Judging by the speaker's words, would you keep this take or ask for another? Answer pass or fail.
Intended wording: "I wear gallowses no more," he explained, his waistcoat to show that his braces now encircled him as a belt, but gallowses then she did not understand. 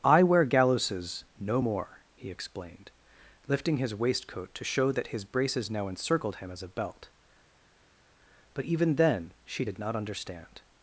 fail